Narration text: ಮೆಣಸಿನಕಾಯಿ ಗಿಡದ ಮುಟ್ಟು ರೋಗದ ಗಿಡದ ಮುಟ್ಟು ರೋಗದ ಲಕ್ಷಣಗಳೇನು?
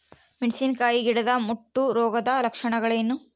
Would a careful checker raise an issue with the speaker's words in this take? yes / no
yes